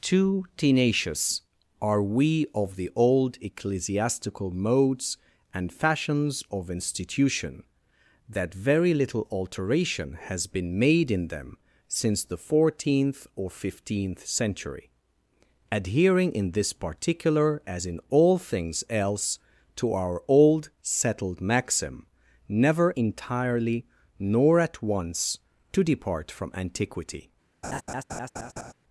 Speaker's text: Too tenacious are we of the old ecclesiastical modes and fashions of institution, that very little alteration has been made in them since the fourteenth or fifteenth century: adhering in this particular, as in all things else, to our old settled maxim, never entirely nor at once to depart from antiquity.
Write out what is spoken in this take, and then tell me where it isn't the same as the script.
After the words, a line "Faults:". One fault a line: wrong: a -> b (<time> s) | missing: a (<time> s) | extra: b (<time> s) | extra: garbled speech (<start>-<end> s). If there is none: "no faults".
Too tenacious are we of the old ecclesiastical modes and fashions of institution, that very little alteration has been made in them since the fourteenth or fifteenth century: adhering in this particular, as in all things else, to our old settled maxim, never entirely nor at once to depart from antiquity.
Faults:
no faults